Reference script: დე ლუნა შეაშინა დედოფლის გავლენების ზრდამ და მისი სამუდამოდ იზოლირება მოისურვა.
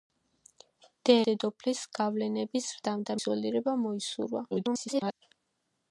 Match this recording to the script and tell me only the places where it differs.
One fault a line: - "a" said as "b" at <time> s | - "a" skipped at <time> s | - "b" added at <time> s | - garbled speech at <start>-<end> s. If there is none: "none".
- "ლუნა შეაშინა" skipped at 1.1 s
- "მისი სამუდამოდ" skipped at 3.2 s
- garbled speech at 4.5-5.1 s